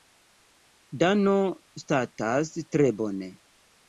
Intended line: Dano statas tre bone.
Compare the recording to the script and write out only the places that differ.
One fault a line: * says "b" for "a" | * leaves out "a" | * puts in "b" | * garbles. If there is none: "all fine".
all fine